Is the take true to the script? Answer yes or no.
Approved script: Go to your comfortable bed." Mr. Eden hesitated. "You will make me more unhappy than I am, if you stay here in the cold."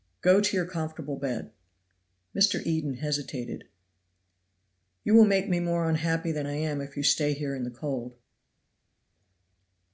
yes